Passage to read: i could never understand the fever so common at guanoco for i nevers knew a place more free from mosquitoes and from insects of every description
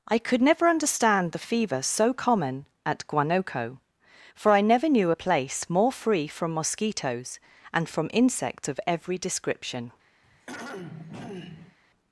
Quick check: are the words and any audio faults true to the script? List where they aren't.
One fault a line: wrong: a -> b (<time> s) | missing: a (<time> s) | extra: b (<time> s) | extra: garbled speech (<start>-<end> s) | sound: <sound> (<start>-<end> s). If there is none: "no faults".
wrong: nevers -> never (4.6 s)
sound: throat clearing (10.2-11.8 s)